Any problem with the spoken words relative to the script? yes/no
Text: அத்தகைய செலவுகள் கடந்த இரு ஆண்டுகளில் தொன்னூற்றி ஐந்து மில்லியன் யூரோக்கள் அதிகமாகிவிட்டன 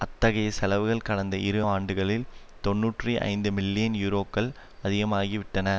no